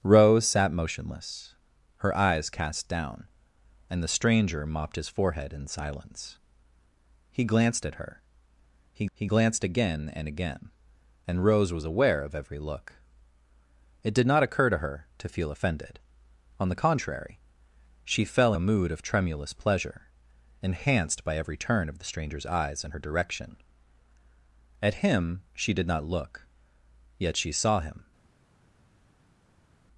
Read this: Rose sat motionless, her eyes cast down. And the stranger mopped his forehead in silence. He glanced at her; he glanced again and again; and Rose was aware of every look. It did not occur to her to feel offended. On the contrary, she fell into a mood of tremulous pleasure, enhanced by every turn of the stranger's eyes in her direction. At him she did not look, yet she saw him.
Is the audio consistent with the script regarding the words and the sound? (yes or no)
no